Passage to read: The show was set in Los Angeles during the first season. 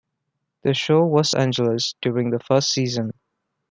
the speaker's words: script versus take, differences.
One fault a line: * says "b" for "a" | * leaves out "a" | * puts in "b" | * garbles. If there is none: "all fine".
* leaves out "set in Los"